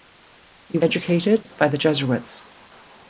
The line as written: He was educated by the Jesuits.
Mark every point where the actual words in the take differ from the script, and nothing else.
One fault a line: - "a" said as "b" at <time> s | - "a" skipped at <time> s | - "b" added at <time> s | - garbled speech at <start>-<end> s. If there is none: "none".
- "was" skipped at 0.8 s